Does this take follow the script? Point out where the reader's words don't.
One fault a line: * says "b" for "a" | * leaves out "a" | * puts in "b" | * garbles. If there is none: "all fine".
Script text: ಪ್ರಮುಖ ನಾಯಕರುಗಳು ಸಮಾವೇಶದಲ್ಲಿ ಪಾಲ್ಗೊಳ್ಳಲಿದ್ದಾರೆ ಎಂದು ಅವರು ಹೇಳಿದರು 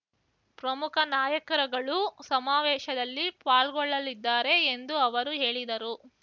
all fine